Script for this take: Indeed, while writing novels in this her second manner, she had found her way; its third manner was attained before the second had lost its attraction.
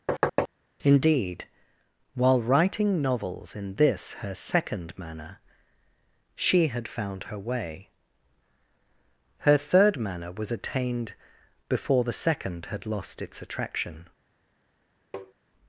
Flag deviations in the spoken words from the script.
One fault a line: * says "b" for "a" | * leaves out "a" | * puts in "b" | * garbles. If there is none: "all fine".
* says "her" for "its"